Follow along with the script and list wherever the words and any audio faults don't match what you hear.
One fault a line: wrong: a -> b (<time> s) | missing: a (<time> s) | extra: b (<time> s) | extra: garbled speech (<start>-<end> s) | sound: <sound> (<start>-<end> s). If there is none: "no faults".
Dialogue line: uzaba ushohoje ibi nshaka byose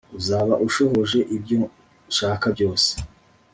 wrong: ibi -> ibyo (1.4 s)